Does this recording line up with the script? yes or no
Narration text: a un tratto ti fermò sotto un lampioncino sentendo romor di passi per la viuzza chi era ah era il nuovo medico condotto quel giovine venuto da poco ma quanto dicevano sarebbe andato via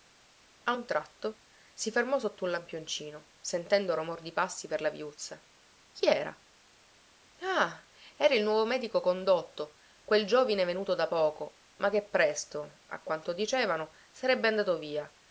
no